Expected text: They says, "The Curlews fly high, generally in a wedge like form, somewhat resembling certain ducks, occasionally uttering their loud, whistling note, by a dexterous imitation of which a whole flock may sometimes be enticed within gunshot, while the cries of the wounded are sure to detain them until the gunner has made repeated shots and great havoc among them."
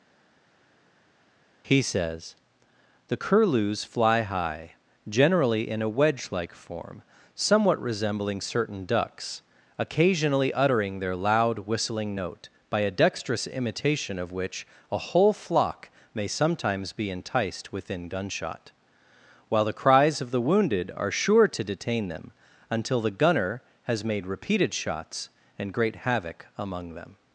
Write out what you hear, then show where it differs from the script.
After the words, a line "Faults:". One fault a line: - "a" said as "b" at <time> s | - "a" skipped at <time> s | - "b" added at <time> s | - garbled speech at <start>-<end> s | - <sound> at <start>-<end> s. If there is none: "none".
He says, "The Curlews fly high, generally in a wedge like form, somewhat resembling certain ducks, occasionally uttering their loud, whistling note, by a dexterous imitation of which a whole flock may sometimes be enticed within gunshot, while the cries of the wounded are sure to detain them until the gunner has made repeated shots and great havoc among them."
Faults:
- "They" said as "He" at 1.7 s